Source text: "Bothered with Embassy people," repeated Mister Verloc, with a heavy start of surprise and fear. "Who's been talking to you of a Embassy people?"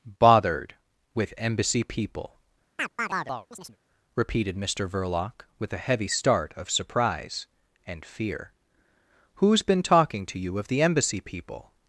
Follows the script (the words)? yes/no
no